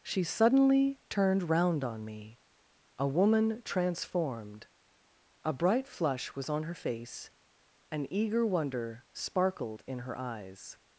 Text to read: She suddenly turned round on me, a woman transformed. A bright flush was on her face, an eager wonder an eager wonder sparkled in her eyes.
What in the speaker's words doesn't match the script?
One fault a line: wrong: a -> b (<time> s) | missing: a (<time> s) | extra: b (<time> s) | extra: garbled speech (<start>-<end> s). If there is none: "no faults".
missing: an eager wonder (9.1 s)